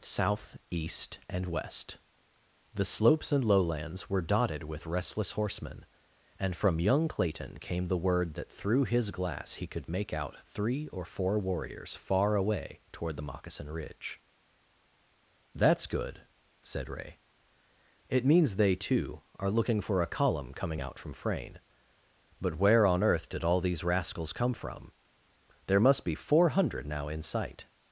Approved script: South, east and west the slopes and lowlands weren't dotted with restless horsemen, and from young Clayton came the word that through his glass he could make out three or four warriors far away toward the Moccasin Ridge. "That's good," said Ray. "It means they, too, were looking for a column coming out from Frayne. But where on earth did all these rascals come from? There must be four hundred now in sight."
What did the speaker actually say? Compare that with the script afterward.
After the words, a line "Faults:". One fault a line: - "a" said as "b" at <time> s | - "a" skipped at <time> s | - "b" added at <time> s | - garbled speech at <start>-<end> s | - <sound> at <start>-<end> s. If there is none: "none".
South, east and west the slopes and lowlands were dotted with restless horsemen, and from young Clayton came the word that through his glass he could make out three or four warriors far away toward the Moccasin Ridge. "That's good," said Ray. "It means they, too, are looking for a column coming out from Frayne. But where on earth did all these rascals come from? There must be four hundred now in sight."
Faults:
- "weren't" said as "were" at 4.1 s
- "were" said as "are" at 19.4 s